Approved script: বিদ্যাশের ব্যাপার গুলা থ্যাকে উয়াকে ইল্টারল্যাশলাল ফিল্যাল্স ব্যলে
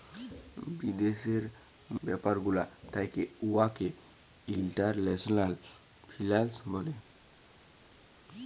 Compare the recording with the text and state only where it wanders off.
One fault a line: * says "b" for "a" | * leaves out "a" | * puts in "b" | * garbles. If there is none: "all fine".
all fine